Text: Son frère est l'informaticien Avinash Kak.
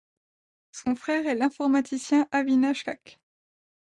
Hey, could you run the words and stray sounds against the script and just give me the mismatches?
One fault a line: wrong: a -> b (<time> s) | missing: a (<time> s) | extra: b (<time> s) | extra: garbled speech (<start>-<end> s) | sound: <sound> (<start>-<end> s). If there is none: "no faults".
no faults